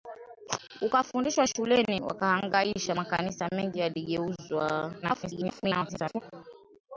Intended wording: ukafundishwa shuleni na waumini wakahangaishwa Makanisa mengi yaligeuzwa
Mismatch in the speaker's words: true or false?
true